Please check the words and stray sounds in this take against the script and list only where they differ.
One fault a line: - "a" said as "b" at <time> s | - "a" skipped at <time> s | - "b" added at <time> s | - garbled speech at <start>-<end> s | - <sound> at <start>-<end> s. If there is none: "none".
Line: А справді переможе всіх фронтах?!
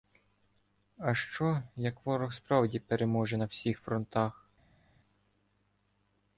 - "що як ворог" added at 1.1 s
- "на" added at 3.3 s